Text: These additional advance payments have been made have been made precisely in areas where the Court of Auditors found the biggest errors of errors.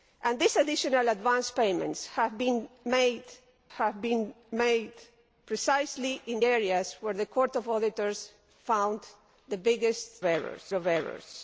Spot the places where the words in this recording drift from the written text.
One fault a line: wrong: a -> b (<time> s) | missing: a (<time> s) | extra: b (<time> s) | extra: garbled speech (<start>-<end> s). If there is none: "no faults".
no faults